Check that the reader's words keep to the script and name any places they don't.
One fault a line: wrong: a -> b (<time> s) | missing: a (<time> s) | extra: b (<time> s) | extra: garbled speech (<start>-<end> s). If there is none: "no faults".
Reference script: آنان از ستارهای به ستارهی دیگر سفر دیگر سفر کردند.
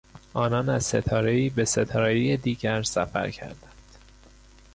missing: دیگر سفر (3.3 s)